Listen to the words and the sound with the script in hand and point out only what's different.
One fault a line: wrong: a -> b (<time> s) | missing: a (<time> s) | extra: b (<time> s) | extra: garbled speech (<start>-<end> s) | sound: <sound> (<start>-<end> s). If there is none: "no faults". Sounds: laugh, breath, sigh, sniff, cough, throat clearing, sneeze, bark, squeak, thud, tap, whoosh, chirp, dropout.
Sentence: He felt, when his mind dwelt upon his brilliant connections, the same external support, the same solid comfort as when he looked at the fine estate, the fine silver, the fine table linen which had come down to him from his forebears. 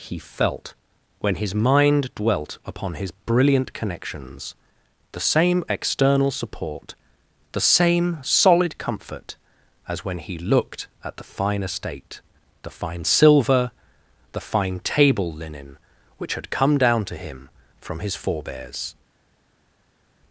no faults